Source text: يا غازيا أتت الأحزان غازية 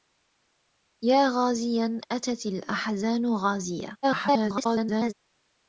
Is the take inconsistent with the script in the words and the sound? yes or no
yes